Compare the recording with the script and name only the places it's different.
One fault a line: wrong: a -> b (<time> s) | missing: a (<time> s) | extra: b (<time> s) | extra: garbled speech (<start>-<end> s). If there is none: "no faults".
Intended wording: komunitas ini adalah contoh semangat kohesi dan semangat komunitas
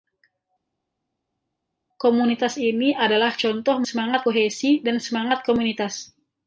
no faults